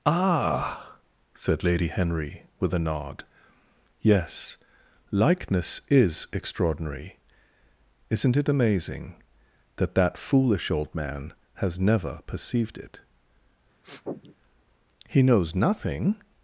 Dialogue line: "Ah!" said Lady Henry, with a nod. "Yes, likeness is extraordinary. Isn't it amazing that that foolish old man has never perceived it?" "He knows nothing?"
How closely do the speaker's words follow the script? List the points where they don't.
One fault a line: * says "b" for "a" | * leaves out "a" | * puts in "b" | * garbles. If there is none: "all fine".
all fine